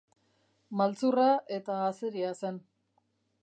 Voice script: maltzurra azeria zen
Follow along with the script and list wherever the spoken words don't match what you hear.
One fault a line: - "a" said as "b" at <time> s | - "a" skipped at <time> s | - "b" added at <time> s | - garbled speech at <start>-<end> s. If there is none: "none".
- "eta" added at 1.6 s